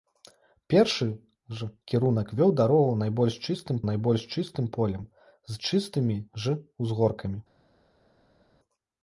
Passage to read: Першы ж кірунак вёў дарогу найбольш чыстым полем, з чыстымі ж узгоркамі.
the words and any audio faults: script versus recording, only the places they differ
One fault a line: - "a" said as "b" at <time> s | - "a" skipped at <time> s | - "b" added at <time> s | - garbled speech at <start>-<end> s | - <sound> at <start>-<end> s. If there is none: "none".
- "найбольш чыстым" added at 3.9 s